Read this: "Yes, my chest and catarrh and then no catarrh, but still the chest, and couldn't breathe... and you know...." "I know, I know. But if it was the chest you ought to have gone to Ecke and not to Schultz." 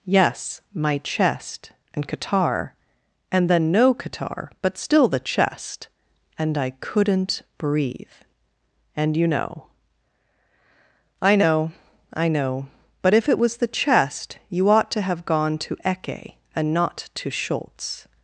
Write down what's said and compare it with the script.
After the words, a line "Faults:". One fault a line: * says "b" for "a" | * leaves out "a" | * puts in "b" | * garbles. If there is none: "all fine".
"Yes, my chest and catarrh and then no catarrh, but still the chest, and I couldn't breathe... and you know...." "I know, I know. But if it was the chest you ought to have gone to Ecke and not to Schultz."
Faults:
* puts in "I"